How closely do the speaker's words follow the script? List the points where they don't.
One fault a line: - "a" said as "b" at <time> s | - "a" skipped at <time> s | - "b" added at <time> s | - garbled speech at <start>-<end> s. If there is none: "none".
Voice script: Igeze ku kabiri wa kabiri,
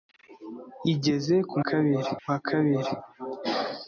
none